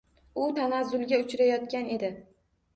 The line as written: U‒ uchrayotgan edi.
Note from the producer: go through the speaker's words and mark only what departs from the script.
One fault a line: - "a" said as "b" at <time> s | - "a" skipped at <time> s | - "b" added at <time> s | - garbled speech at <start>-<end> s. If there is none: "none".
- "tanazzulga" added at 0.6 s